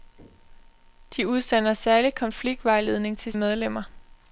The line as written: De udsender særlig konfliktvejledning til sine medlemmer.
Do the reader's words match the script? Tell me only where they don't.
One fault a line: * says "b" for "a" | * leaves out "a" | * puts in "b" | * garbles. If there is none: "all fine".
* leaves out "sine"